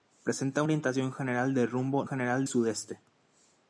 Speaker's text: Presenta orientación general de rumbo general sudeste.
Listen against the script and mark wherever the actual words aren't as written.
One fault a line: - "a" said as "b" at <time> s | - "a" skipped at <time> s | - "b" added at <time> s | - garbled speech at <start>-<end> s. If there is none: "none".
none